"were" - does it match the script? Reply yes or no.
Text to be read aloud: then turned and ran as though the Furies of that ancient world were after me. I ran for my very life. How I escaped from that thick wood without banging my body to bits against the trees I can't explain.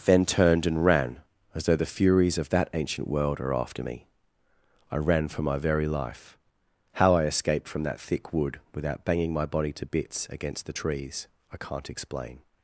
no